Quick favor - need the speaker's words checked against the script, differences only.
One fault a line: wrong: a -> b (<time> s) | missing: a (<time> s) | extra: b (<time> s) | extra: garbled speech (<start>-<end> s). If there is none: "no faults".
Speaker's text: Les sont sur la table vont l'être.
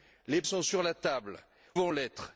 no faults